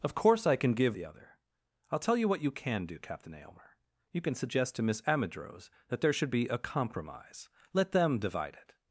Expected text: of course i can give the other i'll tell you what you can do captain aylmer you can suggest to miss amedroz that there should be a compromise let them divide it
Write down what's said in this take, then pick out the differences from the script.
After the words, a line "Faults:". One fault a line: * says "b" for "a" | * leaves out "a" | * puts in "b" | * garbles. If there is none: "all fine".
of course i can give the other i'll tell you what you can do captain aylmer you can suggest to miss amedroz that there should be a compromise let them divide it
Faults:
all fine